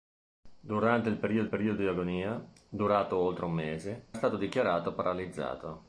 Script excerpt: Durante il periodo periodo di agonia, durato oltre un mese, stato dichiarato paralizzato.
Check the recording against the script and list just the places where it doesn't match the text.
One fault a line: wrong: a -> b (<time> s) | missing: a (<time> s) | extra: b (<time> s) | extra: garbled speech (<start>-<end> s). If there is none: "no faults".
no faults